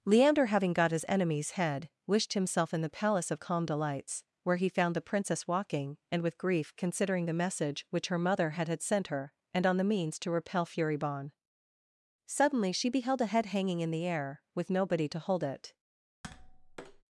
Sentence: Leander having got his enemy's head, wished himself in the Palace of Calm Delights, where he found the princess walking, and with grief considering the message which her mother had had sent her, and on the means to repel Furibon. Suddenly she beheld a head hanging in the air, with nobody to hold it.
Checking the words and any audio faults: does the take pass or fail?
fail